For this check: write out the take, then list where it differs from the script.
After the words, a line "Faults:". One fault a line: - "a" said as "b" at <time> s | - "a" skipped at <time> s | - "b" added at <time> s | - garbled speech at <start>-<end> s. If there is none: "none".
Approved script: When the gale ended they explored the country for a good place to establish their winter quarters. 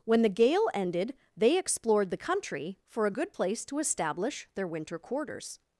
When the gale ended they explored the country for a good place to establish their winter quarters.
Faults:
none